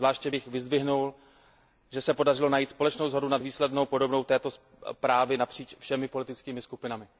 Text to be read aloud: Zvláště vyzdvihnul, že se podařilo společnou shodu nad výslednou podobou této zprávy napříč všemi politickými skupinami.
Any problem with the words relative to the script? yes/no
yes